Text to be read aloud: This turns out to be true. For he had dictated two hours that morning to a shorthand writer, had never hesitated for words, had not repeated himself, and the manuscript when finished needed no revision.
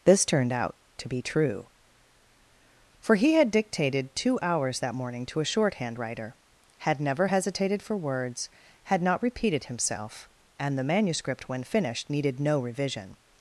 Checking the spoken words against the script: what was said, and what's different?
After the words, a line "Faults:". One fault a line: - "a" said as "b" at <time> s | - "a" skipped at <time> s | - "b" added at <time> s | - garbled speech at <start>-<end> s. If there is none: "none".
This turned out to be true. For he had dictated two hours that morning to a shorthand writer, had never hesitated for words, had not repeated himself, and the manuscript when finished needed no revision.
Faults:
- "turns" said as "turned" at 0.2 s